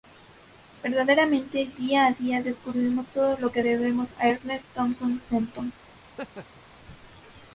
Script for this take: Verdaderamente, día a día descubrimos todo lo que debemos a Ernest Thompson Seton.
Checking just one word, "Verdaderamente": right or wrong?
right